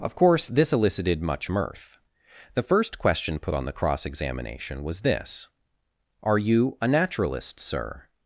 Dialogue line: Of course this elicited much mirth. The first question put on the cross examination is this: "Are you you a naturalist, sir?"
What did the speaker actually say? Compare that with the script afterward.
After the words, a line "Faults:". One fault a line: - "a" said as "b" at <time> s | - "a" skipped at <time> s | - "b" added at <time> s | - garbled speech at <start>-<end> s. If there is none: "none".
Of course this elicited much mirth. The first question put on the cross examination was this: "Are you a naturalist, sir?"
Faults:
- "is" said as "was" at 4.8 s
- "you" skipped at 6.8 s